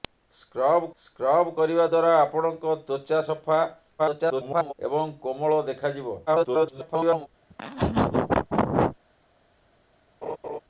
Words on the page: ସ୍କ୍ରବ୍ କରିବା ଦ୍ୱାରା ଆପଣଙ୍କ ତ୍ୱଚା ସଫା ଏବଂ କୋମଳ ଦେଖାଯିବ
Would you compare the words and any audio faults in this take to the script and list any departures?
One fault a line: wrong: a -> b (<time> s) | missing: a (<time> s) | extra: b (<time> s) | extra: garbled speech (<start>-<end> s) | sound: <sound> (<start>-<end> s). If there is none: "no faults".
extra: ସ୍କ୍ରବ୍ (1.0 s)
extra: garbled speech (4.0-4.7 s)
extra: garbled speech (6.3-7.3 s)
sound: laugh (7.5-9.0 s)
sound: laugh (10.2-10.6 s)